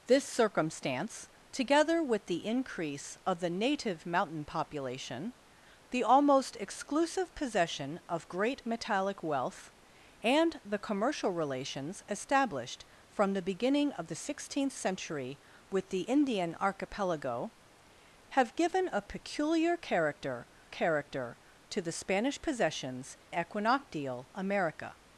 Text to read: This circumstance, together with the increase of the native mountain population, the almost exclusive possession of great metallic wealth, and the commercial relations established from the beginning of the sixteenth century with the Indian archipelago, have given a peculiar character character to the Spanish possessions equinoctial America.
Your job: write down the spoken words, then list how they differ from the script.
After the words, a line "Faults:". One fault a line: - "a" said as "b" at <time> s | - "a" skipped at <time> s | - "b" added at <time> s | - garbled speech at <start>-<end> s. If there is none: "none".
This circumstance, together with the increase of the native mountain population, the almost exclusive possession of great metallic wealth, and the commercial relations established from the beginning of the sixteenth century with the Indian archipelago, have given a peculiar character character to the Spanish possessions equinoctial America.
Faults:
none